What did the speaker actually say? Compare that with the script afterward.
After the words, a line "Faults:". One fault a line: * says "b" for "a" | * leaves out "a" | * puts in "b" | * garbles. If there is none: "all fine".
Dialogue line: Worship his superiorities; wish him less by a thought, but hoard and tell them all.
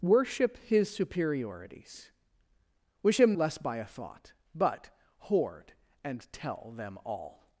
Worship his superiorities; wish him less by a thought, but hoard and tell them all.
Faults:
all fine